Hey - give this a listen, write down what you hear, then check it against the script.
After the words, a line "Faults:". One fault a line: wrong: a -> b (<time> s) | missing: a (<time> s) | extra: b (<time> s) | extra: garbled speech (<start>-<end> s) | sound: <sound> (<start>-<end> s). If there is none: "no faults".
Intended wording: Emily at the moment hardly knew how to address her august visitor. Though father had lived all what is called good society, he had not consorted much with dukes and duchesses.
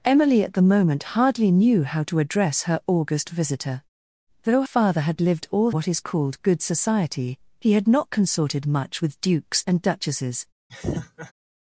Emily at the moment hardly knew how to address her august visitor. Though father had lived all what is called good society, he had not consorted much with dukes and duchesses.
Faults:
sound: laugh (10.7-11.3 s)